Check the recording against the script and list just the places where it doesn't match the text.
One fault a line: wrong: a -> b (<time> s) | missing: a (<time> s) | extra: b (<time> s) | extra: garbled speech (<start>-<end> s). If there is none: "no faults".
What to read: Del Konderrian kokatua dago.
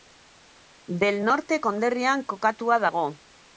extra: Norte (1.3 s)